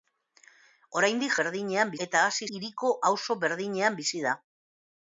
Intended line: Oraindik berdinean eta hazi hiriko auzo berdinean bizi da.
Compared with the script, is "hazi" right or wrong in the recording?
right